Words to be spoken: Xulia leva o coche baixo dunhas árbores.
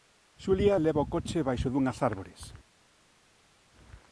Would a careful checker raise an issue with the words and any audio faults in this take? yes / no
no